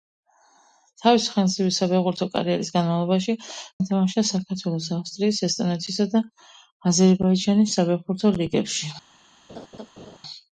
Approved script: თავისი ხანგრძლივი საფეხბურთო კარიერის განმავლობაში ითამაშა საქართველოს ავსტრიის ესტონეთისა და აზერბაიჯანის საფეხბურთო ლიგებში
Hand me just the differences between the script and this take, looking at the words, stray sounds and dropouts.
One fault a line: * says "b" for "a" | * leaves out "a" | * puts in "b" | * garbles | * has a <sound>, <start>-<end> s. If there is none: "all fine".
* has a laugh, 9.5-10.2 s